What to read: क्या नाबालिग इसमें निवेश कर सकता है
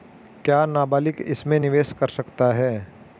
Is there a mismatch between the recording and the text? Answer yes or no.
no